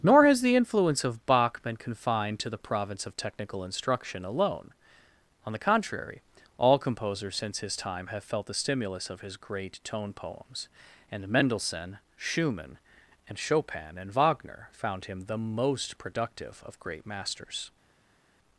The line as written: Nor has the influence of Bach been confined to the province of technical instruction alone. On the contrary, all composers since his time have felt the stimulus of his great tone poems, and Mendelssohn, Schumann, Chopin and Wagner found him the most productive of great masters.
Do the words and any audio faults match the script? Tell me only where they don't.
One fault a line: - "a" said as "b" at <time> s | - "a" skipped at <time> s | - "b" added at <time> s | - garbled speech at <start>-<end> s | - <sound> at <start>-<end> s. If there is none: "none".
- "and" added at 13.3 s